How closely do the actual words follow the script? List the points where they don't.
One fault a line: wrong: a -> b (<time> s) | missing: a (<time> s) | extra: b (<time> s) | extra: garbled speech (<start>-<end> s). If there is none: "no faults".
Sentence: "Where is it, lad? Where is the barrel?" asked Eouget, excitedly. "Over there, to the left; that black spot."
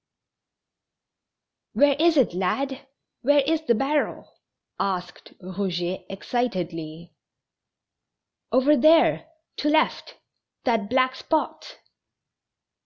missing: the (9.7 s)